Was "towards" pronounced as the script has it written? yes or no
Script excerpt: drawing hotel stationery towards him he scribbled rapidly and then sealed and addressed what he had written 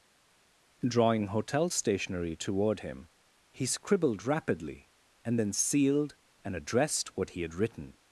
no